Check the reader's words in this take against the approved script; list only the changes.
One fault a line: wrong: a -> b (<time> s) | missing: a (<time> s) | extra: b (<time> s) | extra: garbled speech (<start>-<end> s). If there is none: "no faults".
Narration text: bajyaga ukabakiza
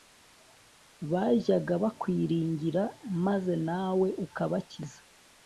extra: bakwiringira maze nawe (1.8 s)